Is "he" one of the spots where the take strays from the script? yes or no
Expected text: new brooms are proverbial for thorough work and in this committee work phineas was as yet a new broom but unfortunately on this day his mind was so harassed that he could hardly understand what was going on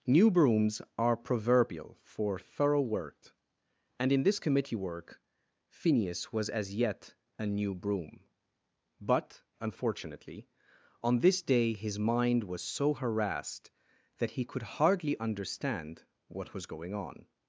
no